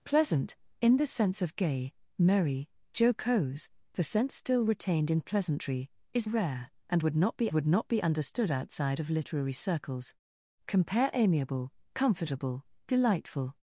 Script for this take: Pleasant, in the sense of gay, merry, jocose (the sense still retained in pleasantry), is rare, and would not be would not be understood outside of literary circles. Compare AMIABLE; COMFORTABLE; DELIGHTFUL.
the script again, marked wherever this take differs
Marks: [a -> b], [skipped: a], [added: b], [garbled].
Pleasant, in the sense of gay, merry, jocose (the sense still retained in pleasantry), is rare, and would not be would not be understood outside of literary circles. Compare AMIABLE; COMFORTABLE; DELIGHTFUL.